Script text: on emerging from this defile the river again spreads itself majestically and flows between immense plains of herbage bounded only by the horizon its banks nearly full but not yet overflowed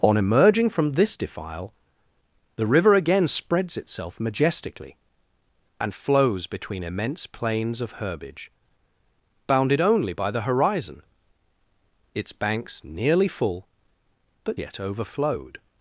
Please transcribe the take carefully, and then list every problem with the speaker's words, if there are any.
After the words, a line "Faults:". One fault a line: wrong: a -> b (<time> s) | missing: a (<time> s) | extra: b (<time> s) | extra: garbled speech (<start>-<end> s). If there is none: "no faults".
on emerging from this defile the river again spreads itself majestically and flows between immense plains of herbage bounded only by the horizon its banks nearly full but yet overflowed
Faults:
missing: not (14.6 s)